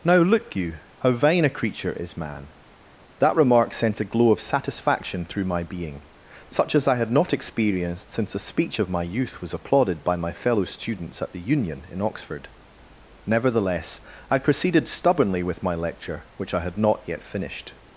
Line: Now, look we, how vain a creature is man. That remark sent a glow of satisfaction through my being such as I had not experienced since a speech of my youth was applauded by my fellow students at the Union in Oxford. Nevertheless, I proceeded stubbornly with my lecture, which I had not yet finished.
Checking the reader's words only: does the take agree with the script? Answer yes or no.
no